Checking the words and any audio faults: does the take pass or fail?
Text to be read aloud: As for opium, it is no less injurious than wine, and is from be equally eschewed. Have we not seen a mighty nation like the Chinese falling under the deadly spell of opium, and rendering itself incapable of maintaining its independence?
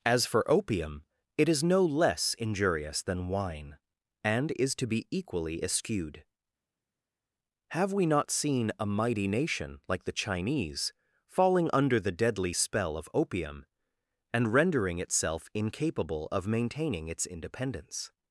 fail